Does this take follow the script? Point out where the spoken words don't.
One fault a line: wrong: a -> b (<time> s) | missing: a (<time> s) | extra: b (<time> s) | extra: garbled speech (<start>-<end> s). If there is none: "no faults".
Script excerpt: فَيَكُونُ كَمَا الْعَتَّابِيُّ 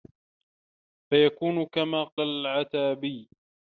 no faults